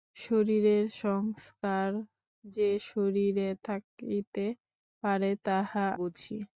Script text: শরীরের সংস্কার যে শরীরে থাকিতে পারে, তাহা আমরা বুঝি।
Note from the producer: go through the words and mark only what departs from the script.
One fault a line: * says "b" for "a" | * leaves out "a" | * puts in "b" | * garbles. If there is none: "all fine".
* leaves out "আমরা"